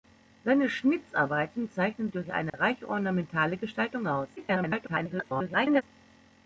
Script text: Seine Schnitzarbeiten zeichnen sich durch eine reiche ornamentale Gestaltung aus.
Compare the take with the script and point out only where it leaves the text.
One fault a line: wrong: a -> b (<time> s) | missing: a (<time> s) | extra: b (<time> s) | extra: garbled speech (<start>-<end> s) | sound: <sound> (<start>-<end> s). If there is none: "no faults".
missing: sich (2.1 s)
sound: dropout (2.5-2.5 s)
extra: garbled speech (4.4-5.8 s)